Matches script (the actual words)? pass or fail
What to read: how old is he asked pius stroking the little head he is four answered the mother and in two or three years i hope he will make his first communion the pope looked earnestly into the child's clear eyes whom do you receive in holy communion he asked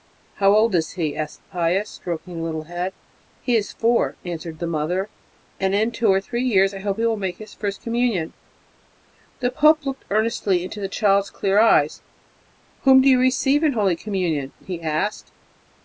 pass